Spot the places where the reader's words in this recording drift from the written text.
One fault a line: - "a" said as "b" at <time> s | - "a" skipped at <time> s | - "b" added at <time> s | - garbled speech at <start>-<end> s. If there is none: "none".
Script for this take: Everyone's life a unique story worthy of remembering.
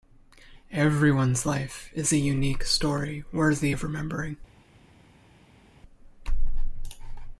- "is" added at 1.9 s